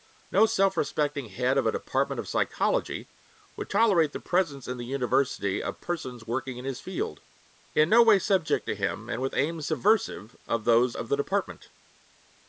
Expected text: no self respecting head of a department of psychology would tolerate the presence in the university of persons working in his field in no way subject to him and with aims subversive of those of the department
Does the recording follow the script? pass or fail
pass